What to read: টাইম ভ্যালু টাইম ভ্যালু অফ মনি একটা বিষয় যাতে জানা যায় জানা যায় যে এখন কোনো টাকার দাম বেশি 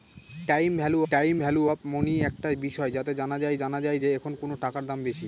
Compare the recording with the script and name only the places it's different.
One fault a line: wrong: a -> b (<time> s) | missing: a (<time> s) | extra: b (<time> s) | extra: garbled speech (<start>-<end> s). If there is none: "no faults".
no faults